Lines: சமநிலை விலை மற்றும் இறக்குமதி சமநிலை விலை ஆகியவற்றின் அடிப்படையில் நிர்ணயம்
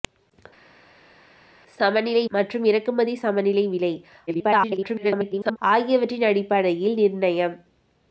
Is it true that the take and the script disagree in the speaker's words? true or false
true